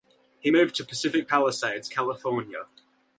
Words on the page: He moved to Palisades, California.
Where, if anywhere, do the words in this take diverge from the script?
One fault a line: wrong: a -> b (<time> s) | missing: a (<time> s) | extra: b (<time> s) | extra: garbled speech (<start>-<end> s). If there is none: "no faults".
extra: Pacific (0.8 s)